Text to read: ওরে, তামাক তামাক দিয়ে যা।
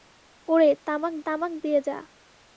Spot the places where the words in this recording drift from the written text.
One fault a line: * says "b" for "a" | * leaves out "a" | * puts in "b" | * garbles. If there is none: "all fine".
all fine